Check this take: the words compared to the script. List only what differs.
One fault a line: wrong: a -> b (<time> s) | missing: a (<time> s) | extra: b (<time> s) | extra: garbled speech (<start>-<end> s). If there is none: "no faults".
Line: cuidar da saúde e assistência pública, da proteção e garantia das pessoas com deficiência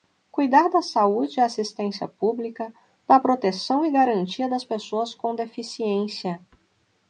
no faults